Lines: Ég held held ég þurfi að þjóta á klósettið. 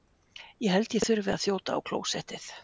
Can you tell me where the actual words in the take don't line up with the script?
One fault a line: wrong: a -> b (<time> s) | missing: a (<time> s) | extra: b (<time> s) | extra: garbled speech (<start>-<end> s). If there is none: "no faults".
missing: held (0.9 s)